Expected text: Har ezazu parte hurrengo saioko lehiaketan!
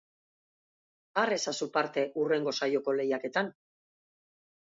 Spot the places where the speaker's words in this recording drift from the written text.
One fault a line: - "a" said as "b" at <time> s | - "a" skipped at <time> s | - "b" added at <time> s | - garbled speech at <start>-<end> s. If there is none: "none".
none